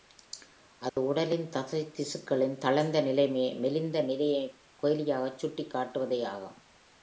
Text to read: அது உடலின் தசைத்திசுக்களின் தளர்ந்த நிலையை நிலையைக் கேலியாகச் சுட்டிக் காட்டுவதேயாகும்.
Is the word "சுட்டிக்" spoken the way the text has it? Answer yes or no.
yes